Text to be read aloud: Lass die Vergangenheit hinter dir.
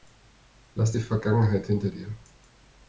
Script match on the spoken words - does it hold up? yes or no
yes